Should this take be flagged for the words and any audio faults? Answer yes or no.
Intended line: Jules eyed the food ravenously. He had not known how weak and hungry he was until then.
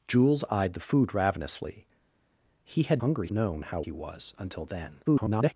yes